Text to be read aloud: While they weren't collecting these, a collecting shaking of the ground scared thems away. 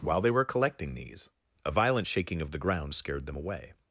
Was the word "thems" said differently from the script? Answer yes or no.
yes